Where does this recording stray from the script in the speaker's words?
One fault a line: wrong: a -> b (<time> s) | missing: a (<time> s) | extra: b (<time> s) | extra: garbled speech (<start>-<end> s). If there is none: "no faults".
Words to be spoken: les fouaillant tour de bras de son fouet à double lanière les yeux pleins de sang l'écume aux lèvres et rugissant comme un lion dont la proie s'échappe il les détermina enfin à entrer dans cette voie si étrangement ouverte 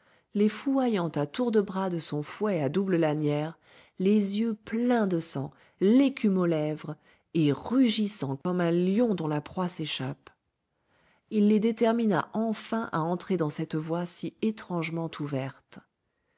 extra: à (1.1 s)